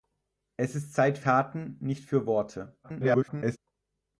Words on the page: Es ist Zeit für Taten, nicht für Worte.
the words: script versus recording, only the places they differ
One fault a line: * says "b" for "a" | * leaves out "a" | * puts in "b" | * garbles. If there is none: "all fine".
* leaves out "für"
* garbles